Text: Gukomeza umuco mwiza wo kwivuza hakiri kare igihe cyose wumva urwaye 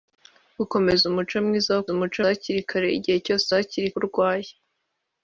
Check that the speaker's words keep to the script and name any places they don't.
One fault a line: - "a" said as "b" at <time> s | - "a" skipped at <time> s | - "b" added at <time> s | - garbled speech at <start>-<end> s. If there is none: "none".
- "kwivuza" said as "umuco" at 1.9 s
- "wumva" said as "hakiri" at 3.6 s